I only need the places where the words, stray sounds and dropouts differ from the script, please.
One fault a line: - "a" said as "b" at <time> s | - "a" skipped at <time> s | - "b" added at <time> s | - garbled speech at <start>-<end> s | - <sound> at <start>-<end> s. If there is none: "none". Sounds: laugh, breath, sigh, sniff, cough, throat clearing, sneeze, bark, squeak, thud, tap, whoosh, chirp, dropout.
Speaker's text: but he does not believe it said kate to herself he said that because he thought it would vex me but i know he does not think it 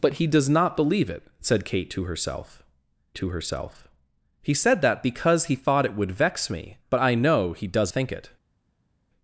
- "to herself" added at 3.2 s
- "not" skipped at 7.9 s